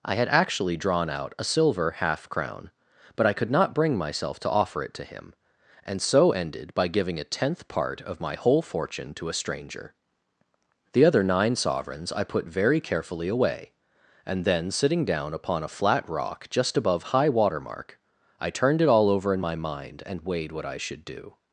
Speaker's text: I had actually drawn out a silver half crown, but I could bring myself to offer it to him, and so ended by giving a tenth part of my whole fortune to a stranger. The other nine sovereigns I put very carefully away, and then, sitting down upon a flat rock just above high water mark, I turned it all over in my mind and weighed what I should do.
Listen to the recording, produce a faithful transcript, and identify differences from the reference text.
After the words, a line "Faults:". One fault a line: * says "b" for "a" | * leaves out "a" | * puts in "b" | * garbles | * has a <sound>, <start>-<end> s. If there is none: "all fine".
I had actually drawn out a silver half crown, but I could not bring myself to offer it to him, and so ended by giving a tenth part of my whole fortune to a stranger. The other nine sovereigns I put very carefully away, and then, sitting down upon a flat rock just above high water mark, I turned it all over in my mind and weighed what I should do.
Faults:
* puts in "not"